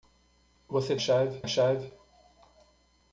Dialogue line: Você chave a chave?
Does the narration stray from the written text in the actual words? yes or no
no